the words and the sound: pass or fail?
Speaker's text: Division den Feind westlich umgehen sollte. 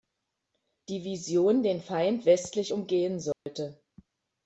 fail